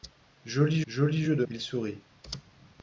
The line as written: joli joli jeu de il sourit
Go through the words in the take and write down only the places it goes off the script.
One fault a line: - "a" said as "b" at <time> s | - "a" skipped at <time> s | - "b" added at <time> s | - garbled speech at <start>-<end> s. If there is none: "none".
none